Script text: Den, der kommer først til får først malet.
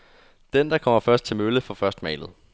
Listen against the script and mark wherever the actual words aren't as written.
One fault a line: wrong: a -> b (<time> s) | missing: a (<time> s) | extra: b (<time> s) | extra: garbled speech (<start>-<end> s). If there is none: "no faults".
extra: mølle (1.3 s)